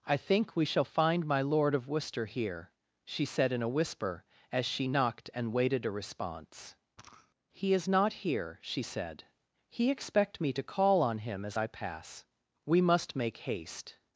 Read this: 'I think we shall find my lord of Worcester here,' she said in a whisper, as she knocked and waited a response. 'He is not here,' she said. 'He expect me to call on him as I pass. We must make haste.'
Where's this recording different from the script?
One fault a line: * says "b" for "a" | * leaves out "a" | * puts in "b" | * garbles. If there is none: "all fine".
all fine